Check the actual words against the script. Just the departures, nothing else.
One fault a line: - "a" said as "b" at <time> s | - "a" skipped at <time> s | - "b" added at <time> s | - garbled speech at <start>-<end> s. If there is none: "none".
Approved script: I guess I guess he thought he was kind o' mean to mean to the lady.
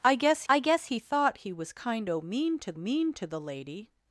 none